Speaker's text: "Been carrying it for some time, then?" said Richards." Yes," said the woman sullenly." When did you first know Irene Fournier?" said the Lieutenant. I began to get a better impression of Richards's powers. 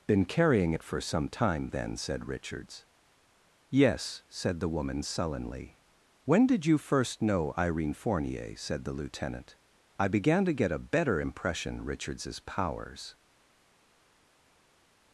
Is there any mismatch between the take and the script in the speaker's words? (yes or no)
yes